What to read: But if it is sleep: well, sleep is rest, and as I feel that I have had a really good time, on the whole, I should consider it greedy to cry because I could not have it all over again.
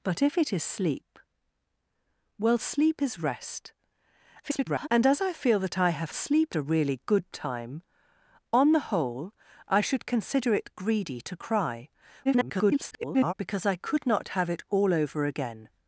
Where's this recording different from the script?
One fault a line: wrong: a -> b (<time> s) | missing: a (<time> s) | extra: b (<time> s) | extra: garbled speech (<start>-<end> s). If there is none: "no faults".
extra: garbled speech (4.4-4.9 s)
wrong: had -> sleep (6.1 s)
extra: garbled speech (12.2-13.3 s)